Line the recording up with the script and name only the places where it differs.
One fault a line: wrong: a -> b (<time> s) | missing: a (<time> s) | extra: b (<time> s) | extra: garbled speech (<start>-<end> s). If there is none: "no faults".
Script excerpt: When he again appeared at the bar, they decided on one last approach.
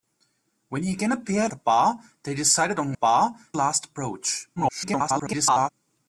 missing: at (1.5 s)
wrong: one -> bar (2.9 s)
extra: garbled speech (4.6-5.7 s)